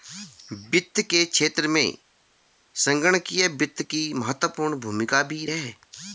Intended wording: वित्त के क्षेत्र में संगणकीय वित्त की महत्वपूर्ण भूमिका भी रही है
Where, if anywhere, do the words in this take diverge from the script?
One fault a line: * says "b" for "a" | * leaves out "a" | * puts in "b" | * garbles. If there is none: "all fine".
* leaves out "रही"